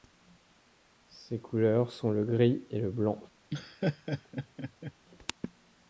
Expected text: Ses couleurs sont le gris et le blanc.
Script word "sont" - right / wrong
right